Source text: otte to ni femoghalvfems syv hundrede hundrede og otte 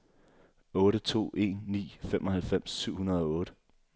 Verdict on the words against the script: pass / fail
fail